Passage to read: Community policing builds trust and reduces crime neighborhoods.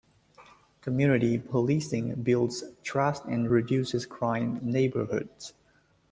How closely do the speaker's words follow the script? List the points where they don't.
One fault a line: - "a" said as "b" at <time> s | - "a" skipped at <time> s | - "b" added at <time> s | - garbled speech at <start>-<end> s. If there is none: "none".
none